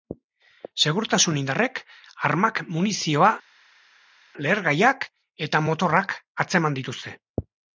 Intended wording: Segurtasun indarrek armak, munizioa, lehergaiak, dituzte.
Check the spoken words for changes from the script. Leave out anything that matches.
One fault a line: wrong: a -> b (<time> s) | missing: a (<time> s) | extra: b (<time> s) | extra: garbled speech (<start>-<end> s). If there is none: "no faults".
extra: eta motorrak atzeman (5.5 s)